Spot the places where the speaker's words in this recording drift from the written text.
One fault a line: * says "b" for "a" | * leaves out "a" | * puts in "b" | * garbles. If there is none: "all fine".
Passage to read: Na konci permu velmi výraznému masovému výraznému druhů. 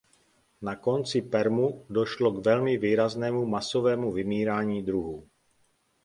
* puts in "došlo k"
* says "vymírání" for "výraznému"